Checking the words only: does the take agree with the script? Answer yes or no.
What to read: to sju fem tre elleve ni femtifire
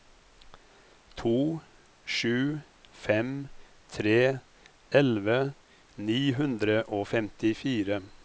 no